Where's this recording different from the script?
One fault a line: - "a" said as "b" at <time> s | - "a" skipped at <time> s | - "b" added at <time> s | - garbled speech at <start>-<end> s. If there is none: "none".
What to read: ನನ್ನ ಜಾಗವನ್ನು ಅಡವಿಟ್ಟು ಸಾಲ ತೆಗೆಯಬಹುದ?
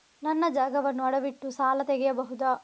none